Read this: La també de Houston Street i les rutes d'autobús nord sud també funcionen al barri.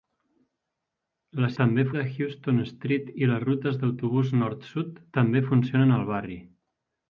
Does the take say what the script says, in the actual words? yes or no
yes